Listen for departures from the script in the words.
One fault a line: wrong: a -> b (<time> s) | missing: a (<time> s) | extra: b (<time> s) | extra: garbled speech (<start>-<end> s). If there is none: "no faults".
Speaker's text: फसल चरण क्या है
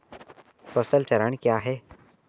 no faults